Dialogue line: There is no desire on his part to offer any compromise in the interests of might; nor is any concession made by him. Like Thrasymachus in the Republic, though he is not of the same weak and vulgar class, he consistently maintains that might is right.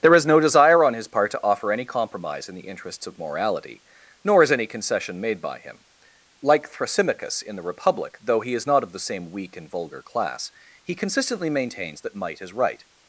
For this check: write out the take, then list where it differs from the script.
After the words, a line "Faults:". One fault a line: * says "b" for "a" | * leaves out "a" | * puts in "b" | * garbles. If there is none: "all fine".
There is no desire on his part to offer any compromise in the interests of morality; nor is any concession made by him. Like Thrasymachus in the Republic, though he is not of the same weak and vulgar class, he consistently maintains that might is right.
Faults:
* says "morality" for "might"